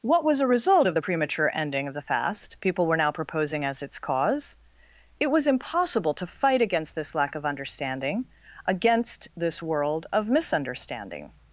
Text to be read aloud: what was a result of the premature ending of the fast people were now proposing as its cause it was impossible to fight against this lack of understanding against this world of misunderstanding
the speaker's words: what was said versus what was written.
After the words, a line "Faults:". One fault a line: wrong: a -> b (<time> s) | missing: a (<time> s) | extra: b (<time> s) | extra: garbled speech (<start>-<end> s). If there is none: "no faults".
what was a result of the premature ending of the fast people were now proposing as its cause it was impossible to fight against this lack of understanding against this world of misunderstanding
Faults:
no faults